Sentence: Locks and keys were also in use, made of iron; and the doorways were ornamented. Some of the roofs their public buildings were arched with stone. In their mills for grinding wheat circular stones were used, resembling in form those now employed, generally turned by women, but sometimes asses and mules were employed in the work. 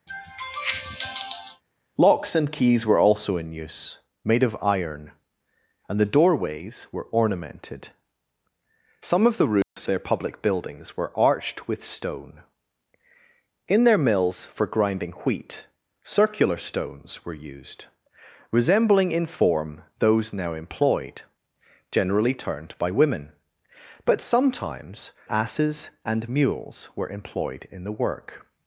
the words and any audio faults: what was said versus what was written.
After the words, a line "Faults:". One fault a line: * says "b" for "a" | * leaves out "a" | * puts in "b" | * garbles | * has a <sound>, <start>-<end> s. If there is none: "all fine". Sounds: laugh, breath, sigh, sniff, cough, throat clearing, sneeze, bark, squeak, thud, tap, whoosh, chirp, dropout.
Locks and keys were also in use, made of iron; and the doorways were ornamented. Some of the roofs their public buildings were arched with stone. In their mills for grinding wheat circular stones were used, resembling in form those now employed, generally turned by women, but sometimes asses and mules were employed in the work.
Faults:
* has a sniff, 0.1-1.6 s
* has a dropout, 9.6-9.8 s